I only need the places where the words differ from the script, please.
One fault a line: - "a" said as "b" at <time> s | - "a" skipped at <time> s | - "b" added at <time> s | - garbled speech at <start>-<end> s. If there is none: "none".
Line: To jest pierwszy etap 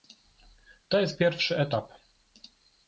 none